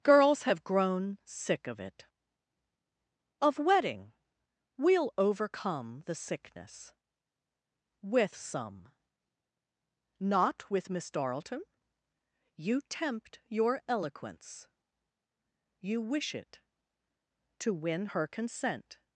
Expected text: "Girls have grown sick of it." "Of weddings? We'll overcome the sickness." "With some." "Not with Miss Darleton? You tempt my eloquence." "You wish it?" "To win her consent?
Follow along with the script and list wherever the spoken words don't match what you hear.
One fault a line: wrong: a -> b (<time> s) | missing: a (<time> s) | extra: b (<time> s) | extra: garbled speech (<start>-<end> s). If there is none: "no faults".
wrong: weddings -> wedding (3.6 s)
wrong: my -> your (13.5 s)